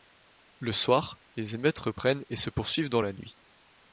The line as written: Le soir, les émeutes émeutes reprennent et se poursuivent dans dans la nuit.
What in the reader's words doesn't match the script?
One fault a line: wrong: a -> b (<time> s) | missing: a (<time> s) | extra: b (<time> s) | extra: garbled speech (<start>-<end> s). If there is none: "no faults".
missing: émeutes (1.8 s)
missing: dans (3.0 s)